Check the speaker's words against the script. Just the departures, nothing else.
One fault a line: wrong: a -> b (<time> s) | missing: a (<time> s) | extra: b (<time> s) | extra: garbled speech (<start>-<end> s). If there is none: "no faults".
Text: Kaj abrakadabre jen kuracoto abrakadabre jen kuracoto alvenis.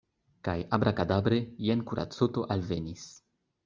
missing: abrakadabre jen kuracoto (2.5 s)